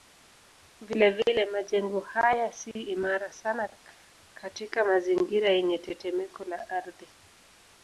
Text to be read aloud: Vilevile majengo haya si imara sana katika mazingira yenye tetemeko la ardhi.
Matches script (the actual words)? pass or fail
pass